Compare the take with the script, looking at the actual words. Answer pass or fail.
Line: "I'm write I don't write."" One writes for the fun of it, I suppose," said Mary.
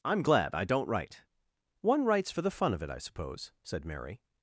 fail